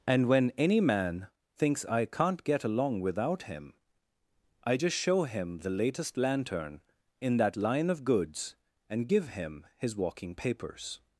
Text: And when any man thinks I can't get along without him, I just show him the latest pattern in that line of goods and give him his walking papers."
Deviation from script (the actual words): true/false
true